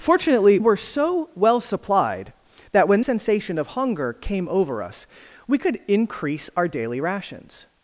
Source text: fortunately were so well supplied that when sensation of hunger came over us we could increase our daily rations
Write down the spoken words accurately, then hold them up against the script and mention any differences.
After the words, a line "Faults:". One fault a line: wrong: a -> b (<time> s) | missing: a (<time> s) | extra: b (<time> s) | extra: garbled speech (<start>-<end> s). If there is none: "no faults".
fortunately were so well supplied that when sensation of hunger came over us we could increase our daily rations
Faults:
no faults